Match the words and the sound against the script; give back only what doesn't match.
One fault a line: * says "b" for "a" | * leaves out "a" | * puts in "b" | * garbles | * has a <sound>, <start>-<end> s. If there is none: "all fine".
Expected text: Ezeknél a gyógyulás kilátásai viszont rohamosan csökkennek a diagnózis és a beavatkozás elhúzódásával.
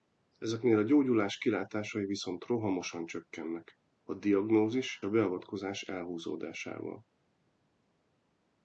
* leaves out "és"